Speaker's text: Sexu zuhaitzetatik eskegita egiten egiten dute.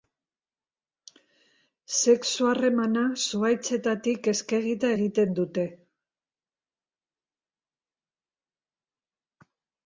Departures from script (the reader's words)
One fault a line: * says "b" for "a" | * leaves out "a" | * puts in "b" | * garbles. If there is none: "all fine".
* puts in "harremana"
* leaves out "egiten"